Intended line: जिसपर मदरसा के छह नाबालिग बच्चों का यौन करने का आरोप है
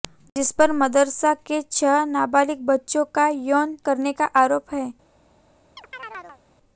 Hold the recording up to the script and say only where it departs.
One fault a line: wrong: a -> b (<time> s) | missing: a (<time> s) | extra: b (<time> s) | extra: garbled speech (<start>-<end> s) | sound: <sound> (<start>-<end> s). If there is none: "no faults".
sound: chirp (5.8-6.4 s)